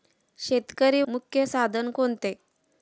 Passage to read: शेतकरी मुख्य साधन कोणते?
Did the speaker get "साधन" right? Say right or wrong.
right